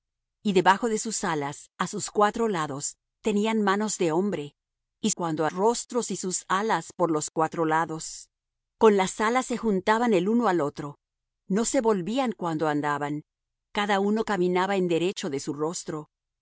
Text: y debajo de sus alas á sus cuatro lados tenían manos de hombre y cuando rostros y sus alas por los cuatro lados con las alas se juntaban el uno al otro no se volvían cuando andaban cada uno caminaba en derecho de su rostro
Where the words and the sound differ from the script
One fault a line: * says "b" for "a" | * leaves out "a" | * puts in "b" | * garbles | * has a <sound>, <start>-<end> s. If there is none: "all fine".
all fine